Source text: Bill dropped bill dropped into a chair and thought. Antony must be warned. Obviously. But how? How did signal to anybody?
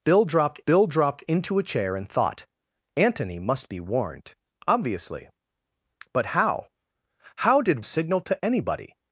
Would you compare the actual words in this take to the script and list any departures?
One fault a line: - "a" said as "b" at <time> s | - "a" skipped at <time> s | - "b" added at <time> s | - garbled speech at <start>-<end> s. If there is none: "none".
none